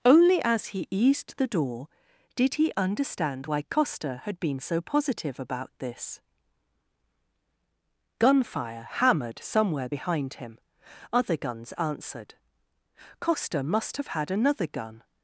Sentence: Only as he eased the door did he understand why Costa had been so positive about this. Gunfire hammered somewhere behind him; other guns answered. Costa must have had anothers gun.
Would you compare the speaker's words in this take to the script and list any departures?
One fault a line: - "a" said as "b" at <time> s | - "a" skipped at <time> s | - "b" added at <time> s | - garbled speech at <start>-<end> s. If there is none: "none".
- "anothers" said as "another" at 14.3 s